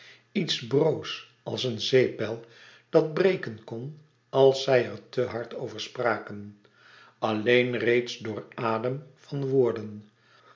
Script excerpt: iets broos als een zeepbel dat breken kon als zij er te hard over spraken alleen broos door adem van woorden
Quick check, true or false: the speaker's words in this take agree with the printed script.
false